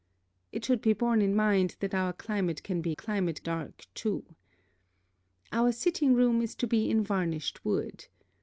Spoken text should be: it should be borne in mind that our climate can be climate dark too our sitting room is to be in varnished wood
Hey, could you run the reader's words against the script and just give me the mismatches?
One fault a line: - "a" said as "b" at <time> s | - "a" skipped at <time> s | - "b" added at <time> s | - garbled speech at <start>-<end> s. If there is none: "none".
none